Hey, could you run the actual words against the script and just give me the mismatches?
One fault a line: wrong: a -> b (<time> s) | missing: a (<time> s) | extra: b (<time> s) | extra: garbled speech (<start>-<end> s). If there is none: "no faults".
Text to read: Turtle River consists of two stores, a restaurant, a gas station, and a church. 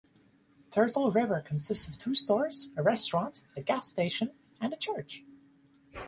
no faults